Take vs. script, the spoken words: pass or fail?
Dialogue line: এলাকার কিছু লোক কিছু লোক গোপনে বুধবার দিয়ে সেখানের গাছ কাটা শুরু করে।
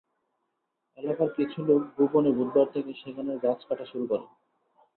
fail